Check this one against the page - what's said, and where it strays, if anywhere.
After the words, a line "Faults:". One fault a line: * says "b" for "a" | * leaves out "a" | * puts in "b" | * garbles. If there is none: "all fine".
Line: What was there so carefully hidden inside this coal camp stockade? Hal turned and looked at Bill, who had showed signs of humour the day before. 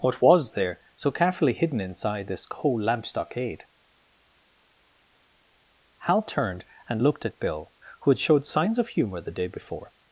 What was there so carefully hidden inside this coal lamp stockade? Hal turned and looked at Bill, who had showed signs of humour the day before.
Faults:
* says "lamp" for "camp"